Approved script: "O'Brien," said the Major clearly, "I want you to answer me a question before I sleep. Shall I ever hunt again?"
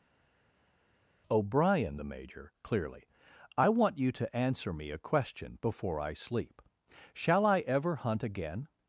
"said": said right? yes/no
no